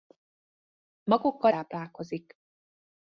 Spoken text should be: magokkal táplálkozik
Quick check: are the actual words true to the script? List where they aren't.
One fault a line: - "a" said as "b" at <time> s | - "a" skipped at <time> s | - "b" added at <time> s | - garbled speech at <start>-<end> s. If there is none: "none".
none